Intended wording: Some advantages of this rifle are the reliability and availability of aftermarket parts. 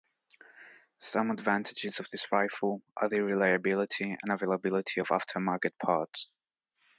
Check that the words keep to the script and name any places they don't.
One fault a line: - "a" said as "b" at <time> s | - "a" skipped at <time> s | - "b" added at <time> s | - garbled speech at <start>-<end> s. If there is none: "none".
none